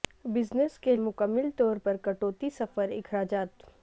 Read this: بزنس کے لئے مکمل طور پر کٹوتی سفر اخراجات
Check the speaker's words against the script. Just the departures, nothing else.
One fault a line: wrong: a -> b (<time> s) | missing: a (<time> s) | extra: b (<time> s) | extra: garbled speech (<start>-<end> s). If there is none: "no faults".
missing: لئے (0.9 s)